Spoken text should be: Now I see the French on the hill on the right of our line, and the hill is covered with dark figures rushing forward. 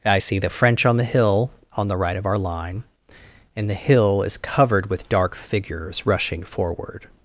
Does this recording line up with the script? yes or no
no